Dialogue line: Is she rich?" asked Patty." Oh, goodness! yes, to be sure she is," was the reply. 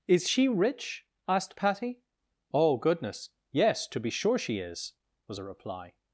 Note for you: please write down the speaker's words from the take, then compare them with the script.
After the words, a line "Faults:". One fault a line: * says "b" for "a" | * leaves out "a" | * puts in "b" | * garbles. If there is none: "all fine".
Is she rich?" asked Patty." Oh, goodness! yes, to be sure she is," was a reply.
Faults:
* says "a" for "the"